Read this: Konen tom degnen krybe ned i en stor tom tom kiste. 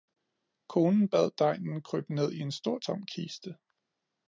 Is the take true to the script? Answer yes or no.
no